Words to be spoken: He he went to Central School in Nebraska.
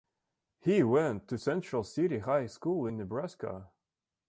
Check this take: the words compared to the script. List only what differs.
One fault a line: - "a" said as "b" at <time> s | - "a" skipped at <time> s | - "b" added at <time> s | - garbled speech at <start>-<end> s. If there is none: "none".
- "he" skipped at 0.8 s
- "City High" added at 1.8 s